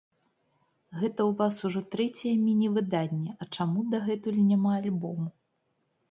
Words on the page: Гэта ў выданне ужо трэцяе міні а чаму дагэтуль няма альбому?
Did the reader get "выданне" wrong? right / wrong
wrong